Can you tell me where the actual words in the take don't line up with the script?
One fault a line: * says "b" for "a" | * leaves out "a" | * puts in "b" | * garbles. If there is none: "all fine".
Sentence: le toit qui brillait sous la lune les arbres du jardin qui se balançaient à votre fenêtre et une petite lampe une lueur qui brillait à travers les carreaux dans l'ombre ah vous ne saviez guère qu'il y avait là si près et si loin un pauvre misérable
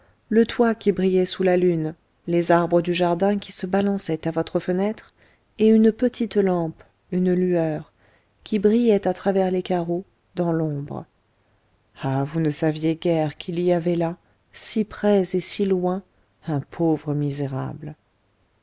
all fine